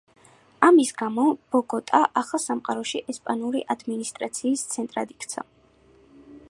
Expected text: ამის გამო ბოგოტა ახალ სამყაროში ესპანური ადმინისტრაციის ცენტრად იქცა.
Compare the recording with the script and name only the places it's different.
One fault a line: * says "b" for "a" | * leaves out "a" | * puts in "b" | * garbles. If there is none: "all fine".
all fine